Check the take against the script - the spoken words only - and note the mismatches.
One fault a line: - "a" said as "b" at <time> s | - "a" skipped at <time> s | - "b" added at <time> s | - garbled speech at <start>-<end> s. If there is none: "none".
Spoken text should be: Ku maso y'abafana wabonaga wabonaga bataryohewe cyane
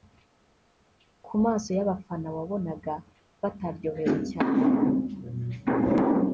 - "wabonaga" skipped at 2.9 s